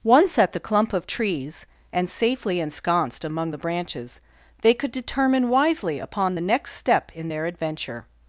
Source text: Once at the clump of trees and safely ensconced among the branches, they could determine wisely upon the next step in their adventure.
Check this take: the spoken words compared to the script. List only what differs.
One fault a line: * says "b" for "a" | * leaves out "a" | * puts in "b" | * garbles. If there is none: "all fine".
all fine